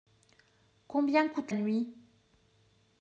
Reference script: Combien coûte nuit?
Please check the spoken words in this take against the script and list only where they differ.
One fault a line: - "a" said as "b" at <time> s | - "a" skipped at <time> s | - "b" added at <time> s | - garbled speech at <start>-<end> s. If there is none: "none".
none